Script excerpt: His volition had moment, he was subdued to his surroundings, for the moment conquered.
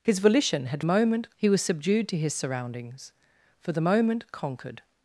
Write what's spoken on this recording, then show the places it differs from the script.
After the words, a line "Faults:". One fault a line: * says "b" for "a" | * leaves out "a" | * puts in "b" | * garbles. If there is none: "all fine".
His volition had moment, he was subdued to his surroundings, for the moment conquered.
Faults:
all fine